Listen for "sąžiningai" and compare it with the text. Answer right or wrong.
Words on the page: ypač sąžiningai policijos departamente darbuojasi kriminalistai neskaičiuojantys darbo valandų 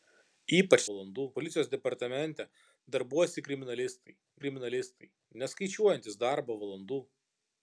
wrong